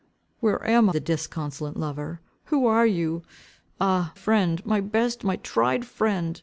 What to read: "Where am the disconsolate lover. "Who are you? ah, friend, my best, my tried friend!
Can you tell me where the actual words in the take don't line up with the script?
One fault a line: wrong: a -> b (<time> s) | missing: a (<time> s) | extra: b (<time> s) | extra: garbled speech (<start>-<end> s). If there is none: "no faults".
no faults